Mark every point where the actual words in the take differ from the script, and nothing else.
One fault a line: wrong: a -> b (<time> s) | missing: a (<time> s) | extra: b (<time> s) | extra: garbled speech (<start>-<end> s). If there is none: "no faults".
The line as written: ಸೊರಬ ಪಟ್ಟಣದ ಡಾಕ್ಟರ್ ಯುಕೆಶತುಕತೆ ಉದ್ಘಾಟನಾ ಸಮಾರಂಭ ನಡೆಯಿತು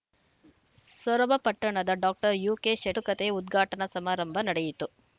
no faults